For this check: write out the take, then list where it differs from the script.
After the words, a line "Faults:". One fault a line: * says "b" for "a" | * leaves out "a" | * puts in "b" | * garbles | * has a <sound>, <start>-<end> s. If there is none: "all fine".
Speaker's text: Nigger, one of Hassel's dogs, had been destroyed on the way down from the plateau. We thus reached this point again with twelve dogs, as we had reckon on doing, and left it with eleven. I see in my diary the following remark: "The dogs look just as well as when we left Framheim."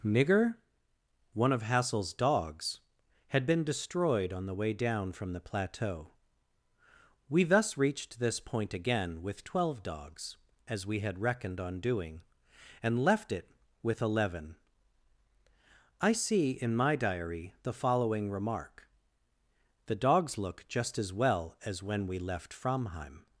Nigger, one of Hassel's dogs, had been destroyed on the way down from the plateau. We thus reached this point again with twelve dogs, as we had reckoned on doing, and left it with eleven. I see in my diary the following remark: "The dogs look just as well as when we left Framheim."
Faults:
* says "reckoned" for "reckon"